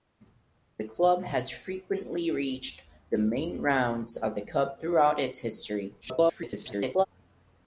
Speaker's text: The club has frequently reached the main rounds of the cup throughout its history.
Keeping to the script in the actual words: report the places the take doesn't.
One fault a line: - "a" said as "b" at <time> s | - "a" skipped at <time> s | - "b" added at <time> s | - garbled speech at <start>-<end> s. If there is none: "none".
- garbled speech at 6.0-7.1 s